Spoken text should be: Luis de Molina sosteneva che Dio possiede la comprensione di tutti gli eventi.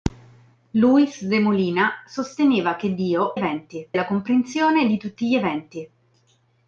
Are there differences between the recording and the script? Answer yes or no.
yes